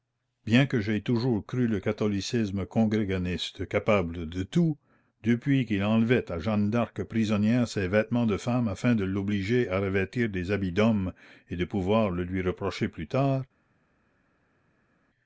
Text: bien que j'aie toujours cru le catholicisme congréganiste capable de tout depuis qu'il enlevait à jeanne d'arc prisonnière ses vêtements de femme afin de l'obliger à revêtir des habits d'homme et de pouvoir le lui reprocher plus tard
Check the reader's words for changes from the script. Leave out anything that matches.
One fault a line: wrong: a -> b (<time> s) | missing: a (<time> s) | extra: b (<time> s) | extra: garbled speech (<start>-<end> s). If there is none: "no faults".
no faults